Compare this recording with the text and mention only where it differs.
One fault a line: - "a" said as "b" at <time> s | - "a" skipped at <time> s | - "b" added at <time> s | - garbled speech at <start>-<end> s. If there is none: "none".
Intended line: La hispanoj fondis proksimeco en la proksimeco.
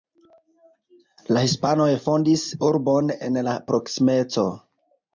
- "proksimeco" said as "urbon" at 2.7 s